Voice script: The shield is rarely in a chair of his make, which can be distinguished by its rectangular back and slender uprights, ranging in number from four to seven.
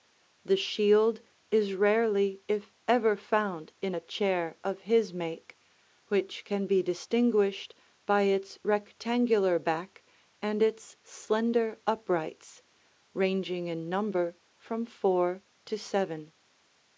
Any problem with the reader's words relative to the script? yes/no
yes